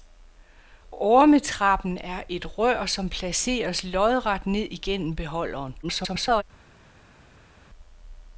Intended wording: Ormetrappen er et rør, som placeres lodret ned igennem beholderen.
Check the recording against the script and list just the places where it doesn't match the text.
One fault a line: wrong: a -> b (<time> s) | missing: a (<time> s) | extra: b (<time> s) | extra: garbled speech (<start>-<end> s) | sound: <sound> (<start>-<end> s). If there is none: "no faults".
extra: garbled speech (5.8-6.4 s)